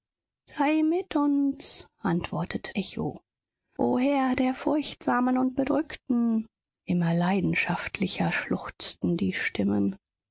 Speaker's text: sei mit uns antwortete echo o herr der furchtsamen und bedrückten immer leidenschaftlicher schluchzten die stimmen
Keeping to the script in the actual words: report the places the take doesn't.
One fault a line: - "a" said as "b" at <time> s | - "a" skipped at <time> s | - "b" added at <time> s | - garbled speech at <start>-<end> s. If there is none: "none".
none